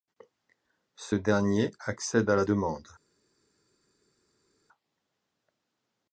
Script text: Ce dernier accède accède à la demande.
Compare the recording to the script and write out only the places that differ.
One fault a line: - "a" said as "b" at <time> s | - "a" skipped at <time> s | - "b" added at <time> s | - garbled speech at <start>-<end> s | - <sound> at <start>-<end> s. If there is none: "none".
- "accède" skipped at 2.3 s